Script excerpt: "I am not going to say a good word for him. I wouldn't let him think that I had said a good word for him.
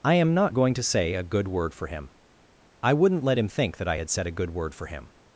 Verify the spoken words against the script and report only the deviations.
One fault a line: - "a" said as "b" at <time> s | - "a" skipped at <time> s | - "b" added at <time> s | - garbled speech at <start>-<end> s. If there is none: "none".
none